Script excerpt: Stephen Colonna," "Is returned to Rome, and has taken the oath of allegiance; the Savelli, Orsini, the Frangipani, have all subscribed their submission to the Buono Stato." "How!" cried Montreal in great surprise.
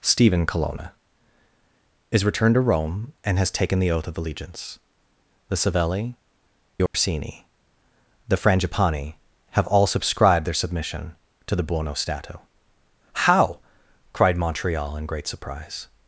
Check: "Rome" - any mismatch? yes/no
no